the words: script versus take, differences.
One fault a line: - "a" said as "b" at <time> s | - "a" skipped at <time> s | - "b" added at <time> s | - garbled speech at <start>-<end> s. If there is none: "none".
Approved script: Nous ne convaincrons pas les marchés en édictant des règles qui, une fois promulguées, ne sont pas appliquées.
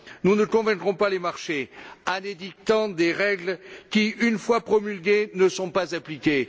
none